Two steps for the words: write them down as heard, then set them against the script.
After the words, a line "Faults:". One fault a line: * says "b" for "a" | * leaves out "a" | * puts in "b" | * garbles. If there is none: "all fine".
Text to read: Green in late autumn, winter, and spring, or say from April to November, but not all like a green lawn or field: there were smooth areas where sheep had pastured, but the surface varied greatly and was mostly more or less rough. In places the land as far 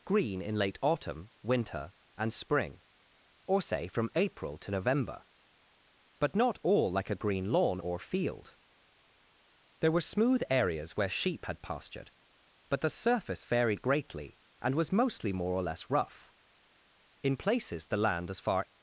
Green in late autumn, winter, and spring, or say from April to November, but not all like a green lawn or field: there were smooth areas where sheep had pastured, but the surface varied greatly and was mostly more or less rough. In places the land as far
Faults:
all fine